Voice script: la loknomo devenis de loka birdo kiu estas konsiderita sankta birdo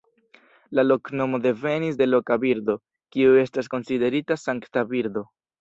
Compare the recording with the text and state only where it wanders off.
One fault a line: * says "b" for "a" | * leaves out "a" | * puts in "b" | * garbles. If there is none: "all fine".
all fine